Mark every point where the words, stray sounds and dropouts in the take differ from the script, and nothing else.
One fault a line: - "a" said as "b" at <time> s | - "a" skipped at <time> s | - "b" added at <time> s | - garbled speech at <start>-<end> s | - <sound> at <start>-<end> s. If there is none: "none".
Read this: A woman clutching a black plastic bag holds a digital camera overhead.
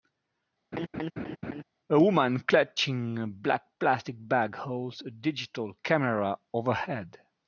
- laugh at 0.7-1.6 s